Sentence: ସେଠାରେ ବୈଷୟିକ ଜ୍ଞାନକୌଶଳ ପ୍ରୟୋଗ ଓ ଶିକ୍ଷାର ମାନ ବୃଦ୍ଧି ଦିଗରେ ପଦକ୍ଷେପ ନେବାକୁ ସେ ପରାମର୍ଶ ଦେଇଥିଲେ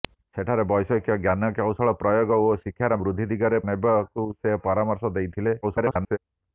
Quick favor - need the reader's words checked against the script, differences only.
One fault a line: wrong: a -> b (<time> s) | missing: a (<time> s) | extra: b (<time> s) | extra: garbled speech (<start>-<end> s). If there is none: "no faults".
missing: ମାନ (3.0 s)
missing: ପଦକ୍ଷେପ (3.6 s)
extra: garbled speech (5.6-6.2 s)